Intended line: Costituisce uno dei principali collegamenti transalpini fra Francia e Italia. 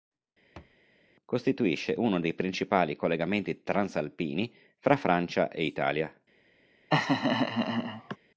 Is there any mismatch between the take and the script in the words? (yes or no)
no